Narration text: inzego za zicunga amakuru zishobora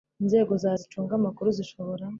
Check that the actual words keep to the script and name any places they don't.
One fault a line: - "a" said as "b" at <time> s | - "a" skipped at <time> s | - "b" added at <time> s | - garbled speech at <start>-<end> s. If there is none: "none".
none